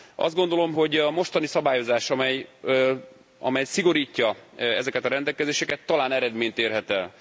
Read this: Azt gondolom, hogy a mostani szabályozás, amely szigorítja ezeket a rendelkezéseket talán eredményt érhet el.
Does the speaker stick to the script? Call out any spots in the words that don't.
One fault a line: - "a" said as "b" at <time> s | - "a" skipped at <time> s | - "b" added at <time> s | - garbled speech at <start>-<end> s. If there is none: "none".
none